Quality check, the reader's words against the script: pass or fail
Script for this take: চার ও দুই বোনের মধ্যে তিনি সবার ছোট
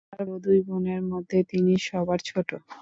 pass